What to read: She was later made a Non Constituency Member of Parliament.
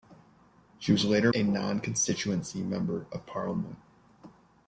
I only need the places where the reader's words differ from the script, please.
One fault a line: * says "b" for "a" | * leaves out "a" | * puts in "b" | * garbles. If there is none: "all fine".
* leaves out "made"